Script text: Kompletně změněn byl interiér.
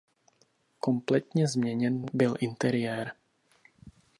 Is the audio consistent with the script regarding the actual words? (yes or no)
yes